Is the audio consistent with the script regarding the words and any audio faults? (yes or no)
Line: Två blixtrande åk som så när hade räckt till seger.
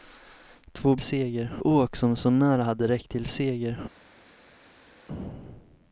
no